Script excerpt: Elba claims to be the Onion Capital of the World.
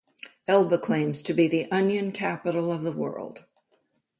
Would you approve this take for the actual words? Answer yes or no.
yes